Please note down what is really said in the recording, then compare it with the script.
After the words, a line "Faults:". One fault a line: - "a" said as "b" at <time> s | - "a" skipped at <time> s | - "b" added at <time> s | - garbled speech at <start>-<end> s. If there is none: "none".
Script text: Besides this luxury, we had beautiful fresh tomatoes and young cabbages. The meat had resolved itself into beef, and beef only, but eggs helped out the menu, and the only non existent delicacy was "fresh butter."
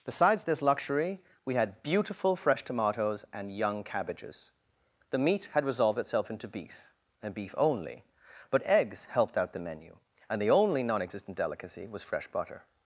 Besides this luxury, we had beautiful fresh tomatoes and young cabbages. The meat had resolved itself into beef, and beef only, but eggs helped out the menu, and the only non existent delicacy was "fresh butter."
Faults:
none